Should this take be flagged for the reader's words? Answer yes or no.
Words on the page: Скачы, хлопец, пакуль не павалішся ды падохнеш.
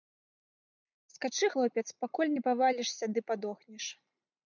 no